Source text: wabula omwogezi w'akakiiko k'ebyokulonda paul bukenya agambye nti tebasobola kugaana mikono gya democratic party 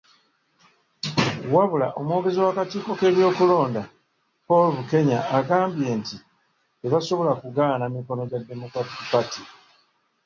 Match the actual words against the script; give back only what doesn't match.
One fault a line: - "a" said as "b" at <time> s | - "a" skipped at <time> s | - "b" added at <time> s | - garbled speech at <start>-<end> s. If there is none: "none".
none